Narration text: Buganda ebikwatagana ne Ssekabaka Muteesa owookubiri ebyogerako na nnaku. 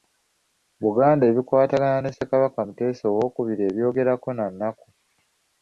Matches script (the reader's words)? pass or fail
pass